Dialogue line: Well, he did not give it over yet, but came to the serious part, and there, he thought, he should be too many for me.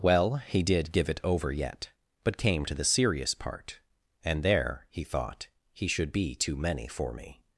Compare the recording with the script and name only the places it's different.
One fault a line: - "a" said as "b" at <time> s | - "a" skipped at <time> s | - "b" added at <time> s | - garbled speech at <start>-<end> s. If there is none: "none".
- "not" skipped at 0.9 s